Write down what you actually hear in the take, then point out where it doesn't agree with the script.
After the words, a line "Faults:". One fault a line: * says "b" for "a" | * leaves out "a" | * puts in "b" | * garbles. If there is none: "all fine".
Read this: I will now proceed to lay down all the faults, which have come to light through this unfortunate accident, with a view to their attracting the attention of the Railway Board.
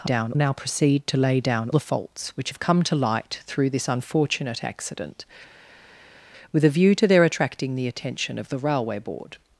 I down now proceed to lay down the faults, which have come to light through this unfortunate accident, with a view to their attracting the attention of the Railway Board.
Faults:
* says "down" for "will"
* leaves out "all"